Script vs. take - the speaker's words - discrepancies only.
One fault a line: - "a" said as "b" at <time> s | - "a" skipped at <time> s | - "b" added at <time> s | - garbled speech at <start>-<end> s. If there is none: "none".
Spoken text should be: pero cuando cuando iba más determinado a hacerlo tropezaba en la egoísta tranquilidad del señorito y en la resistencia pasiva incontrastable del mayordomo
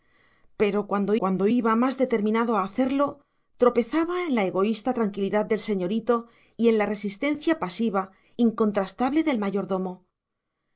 none